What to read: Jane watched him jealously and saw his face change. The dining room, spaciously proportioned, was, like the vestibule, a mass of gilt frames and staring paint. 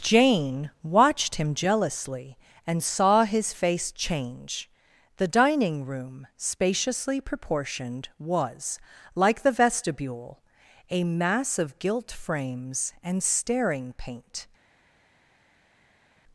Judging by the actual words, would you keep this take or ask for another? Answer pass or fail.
pass